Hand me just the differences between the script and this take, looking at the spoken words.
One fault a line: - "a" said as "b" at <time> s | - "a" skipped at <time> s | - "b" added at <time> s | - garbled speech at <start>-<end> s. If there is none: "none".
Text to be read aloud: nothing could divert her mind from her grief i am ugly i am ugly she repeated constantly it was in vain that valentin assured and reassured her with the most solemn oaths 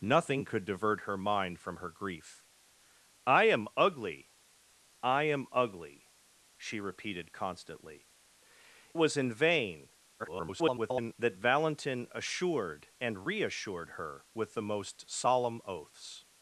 - "it" skipped at 8.1 s
- garbled speech at 10.2-11.1 s